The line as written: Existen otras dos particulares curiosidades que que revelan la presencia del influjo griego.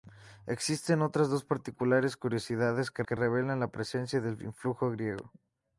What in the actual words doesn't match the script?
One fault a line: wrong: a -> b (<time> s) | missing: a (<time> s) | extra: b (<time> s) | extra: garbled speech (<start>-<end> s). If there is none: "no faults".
no faults